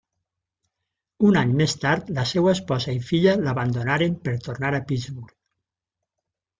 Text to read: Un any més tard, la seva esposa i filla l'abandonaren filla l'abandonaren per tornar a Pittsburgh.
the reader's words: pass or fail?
fail